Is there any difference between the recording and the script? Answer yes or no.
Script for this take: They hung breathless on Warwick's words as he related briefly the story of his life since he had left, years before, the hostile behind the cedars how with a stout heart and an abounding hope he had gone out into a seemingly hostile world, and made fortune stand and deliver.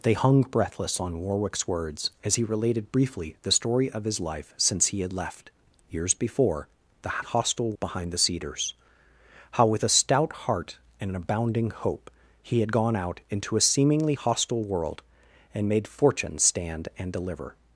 no